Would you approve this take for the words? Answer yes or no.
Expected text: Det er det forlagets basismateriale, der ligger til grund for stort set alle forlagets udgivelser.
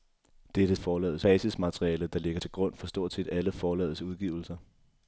yes